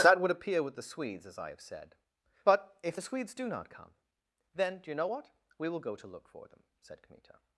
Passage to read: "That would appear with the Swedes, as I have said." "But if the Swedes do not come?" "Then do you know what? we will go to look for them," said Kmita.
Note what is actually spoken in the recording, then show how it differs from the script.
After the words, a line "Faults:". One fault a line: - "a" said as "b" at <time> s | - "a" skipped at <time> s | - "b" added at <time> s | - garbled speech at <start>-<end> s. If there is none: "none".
"That would appear with the Swedes, as I have said." "But if the Swedes do not come?" "Then do you know what? we will go to look for them," said Kmita.
Faults:
none